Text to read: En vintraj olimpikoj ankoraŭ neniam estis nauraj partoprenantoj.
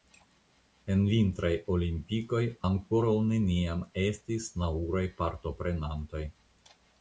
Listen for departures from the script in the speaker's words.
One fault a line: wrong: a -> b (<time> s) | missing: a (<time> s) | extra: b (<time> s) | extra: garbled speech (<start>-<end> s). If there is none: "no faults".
no faults